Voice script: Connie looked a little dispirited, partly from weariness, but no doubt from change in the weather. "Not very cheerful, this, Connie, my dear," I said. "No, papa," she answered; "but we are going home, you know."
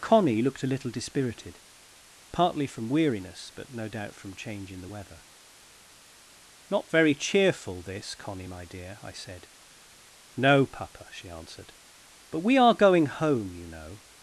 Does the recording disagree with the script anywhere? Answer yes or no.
no